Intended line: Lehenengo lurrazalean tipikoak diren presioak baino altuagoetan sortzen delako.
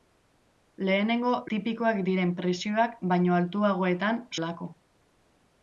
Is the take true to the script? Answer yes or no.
no